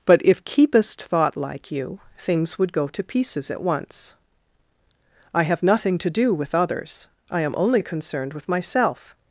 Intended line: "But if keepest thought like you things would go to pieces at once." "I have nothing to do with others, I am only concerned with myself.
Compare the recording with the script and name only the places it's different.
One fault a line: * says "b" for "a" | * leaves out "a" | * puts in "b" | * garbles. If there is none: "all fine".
all fine